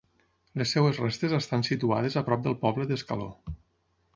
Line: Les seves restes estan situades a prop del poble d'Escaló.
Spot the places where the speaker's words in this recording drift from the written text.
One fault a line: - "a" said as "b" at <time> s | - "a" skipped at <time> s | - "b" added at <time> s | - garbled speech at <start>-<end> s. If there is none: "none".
none